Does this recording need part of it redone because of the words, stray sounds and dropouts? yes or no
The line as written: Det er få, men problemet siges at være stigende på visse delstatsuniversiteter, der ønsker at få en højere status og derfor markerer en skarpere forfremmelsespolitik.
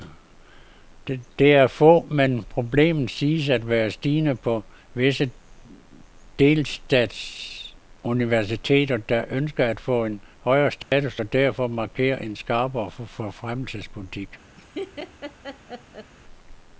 yes